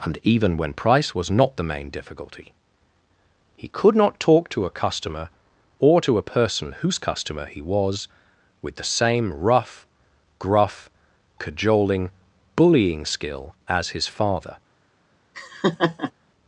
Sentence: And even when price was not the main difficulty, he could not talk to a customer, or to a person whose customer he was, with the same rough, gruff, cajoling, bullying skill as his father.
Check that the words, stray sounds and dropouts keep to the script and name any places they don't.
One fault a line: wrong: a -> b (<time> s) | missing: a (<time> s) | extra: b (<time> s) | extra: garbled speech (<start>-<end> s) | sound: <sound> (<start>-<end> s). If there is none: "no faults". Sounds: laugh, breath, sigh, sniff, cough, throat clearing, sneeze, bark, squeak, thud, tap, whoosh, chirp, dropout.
sound: laugh (15.3-16.1 s)